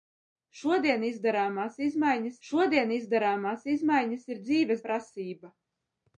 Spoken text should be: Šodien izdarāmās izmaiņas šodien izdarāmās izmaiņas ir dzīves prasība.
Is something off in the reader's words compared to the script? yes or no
no